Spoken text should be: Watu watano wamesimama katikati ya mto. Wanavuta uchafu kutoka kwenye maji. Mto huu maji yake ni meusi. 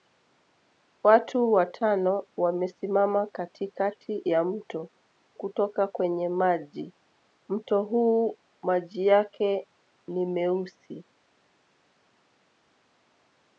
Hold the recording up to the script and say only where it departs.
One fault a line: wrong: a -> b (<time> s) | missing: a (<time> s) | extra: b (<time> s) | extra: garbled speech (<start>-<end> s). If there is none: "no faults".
missing: Wanavuta uchafu (4.9 s)